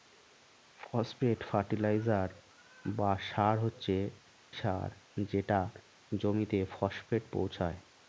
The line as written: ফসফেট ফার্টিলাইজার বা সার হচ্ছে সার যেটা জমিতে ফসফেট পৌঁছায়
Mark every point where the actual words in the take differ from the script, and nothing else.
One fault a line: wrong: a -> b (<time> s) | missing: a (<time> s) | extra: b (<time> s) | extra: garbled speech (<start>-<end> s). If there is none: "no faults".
no faults